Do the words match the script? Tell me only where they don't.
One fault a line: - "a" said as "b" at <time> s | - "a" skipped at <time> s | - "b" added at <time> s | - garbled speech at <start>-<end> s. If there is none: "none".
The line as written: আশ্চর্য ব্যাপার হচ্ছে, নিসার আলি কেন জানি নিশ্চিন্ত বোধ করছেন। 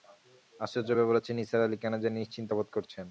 none